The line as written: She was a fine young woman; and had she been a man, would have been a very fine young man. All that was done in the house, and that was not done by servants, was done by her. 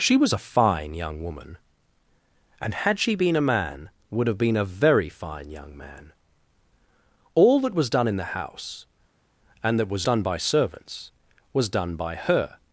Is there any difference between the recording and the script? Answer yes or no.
yes